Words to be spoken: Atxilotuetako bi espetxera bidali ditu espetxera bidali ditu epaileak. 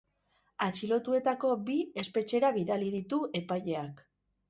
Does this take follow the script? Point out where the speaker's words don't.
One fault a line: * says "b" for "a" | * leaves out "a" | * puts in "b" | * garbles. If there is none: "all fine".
* leaves out "espetxera bidali ditu"